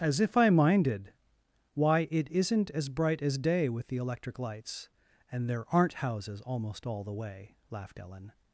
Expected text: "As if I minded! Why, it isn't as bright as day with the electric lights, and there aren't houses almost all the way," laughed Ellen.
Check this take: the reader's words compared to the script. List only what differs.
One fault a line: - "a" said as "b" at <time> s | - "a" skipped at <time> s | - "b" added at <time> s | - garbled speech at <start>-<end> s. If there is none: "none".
none